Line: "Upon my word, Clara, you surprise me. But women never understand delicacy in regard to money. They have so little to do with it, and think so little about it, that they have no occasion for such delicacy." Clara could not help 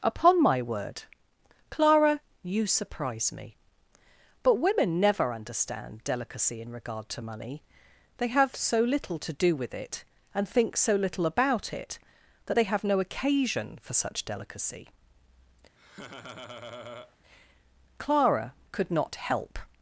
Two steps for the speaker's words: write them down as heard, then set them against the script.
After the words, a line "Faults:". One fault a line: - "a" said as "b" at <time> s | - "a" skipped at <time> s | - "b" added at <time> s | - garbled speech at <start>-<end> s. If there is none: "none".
"Upon my word, Clara, you surprise me. But women never understand delicacy in regard to money. They have so little to do with it, and think so little about it, that they have no occasion for such delicacy." Clara could not help
Faults:
none